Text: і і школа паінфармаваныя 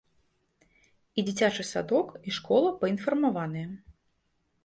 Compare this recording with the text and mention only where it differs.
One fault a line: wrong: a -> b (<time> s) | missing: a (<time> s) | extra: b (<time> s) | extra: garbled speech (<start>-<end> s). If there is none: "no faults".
extra: дзіцячы садок (1.3 s)